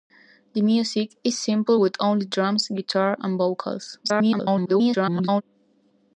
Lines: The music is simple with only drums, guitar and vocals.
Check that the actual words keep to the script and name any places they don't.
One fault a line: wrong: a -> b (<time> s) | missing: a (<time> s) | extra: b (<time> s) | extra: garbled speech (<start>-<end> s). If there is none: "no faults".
extra: garbled speech (4.0-5.4 s)